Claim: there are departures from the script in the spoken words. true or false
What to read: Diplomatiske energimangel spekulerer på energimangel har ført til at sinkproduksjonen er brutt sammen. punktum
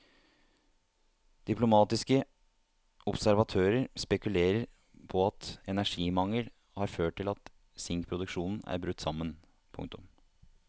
true